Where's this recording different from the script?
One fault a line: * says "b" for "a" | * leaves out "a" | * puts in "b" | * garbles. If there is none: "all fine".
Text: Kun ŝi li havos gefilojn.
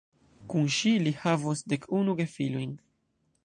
* puts in "dek unu"